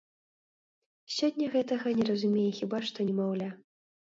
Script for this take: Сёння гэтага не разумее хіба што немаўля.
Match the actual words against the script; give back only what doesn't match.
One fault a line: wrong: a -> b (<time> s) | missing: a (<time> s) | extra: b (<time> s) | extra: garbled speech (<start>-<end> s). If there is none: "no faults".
no faults